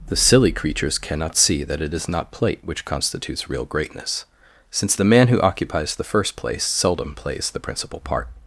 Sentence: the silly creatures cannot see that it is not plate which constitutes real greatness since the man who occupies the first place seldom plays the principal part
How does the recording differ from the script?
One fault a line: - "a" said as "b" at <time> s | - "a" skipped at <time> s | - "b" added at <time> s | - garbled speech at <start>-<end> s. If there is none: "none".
none